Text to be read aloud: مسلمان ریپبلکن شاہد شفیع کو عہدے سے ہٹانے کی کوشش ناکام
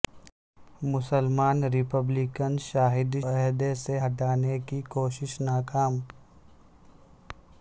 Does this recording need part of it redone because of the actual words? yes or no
yes